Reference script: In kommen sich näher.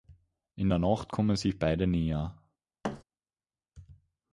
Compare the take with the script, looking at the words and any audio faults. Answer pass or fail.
fail